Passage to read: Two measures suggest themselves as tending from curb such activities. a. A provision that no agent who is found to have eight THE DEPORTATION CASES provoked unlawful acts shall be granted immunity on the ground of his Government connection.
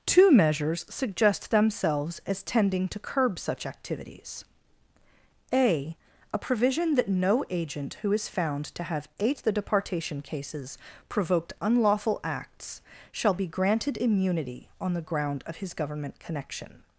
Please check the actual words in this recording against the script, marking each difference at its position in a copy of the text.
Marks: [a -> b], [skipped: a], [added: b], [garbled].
Two measures suggest themselves as tending [from -> to] curb such activities. a. A provision that no agent who is found to have eight THE DEPORTATION CASES provoked unlawful acts shall be granted immunity on the ground of his Government connection.